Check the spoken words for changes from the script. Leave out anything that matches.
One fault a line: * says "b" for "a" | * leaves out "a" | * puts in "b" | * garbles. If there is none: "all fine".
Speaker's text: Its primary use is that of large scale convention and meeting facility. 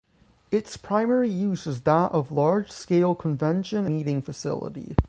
* leaves out "and"